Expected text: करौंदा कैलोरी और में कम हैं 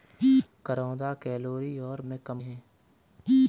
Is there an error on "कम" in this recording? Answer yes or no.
no